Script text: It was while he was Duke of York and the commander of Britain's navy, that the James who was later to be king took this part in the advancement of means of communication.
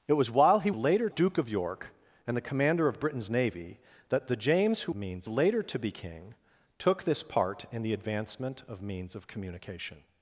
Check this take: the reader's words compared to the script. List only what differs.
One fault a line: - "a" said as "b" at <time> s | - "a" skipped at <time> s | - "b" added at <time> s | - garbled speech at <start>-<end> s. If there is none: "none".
- "was" said as "later" at 0.7 s
- "was" said as "means" at 4.9 s